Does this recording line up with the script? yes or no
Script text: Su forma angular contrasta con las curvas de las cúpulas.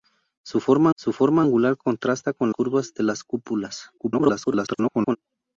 no